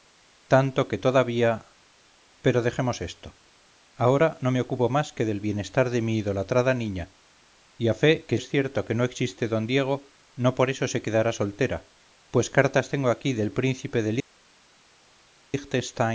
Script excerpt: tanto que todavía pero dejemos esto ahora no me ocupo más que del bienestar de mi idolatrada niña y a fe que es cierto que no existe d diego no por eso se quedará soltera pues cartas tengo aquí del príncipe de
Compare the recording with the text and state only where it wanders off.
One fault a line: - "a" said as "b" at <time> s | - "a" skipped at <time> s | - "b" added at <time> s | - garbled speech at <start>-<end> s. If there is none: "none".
none